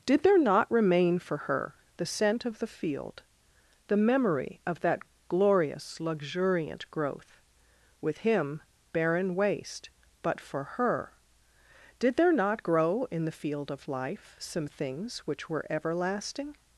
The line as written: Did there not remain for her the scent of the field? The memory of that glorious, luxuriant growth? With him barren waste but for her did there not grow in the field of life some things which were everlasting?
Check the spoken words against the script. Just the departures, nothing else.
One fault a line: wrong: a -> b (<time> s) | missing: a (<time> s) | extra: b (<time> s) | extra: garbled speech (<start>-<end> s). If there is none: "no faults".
no faults